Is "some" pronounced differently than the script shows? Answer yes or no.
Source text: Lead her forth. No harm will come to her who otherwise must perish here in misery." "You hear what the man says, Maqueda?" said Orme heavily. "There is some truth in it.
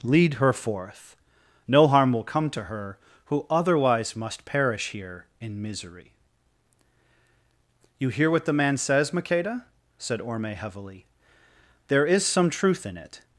no